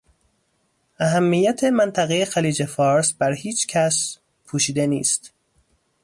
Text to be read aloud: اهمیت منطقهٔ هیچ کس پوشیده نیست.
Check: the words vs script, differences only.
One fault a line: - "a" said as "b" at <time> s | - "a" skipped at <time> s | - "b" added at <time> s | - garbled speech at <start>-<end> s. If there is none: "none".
- "خلیج فارس بر" added at 2.2 s